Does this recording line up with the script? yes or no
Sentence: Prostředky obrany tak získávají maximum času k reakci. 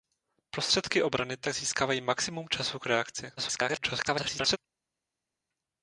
no